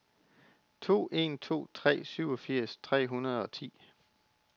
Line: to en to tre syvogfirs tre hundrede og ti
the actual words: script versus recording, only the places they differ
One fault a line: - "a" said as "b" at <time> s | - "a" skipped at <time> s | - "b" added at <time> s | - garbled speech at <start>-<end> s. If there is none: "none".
none